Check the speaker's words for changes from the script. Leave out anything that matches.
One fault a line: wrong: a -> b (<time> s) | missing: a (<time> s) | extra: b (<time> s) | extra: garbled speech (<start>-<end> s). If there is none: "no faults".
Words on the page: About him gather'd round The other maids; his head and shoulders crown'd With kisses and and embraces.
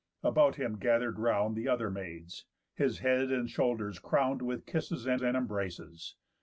no faults